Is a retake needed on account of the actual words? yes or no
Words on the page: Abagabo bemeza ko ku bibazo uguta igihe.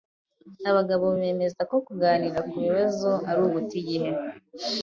yes